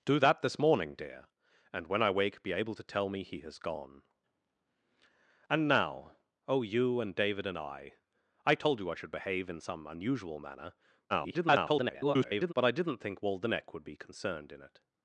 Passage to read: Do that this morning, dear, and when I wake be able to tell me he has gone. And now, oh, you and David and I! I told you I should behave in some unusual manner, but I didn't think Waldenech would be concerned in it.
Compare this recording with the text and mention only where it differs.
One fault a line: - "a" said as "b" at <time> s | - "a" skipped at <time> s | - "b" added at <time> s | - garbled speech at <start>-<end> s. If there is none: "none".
- garbled speech at 11.1-12.5 s